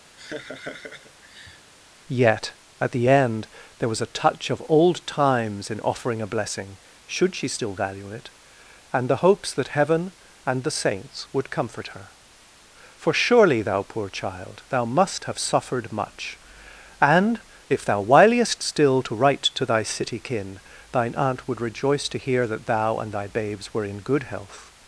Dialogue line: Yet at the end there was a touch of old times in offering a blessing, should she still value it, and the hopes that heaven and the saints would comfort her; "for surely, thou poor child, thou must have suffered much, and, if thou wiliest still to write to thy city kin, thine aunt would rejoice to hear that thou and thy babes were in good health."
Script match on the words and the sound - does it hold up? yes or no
no